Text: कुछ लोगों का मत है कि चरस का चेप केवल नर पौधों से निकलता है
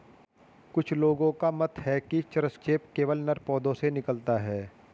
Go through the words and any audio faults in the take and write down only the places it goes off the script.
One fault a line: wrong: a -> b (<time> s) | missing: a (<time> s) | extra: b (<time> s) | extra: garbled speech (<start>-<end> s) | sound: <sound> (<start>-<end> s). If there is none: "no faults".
missing: का (2.6 s)